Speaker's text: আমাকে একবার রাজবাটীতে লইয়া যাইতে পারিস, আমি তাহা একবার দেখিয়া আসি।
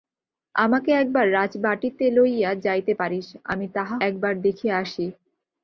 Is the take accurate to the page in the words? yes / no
yes